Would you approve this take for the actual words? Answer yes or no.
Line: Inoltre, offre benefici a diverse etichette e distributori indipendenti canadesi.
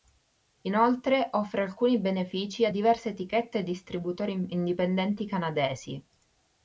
no